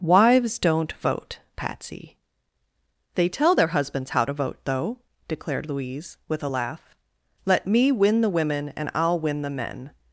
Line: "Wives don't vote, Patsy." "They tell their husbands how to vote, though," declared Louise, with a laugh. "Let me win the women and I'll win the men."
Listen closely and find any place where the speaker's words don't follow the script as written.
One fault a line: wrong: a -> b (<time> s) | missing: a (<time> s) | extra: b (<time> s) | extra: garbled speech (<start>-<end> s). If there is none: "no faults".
no faults